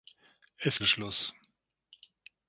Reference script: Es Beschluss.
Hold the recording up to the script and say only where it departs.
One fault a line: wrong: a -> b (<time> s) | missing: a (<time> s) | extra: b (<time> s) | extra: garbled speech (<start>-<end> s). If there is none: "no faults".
no faults